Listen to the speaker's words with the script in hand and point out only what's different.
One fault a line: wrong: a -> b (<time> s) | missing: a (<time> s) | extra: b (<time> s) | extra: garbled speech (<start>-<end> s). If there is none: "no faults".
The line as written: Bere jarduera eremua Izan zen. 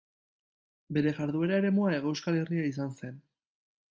extra: Hego Euskal Herria (2.0 s)